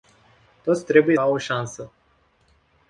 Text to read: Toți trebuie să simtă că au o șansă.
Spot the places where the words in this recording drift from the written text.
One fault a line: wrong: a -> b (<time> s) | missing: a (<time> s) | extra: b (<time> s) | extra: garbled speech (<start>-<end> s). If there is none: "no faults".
missing: să simtă că (1.2 s)